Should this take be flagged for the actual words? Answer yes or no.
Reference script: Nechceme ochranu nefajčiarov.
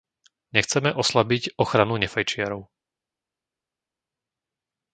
yes